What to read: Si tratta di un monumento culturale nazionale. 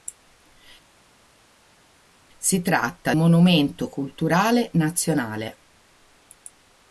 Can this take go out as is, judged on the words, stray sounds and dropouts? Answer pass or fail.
fail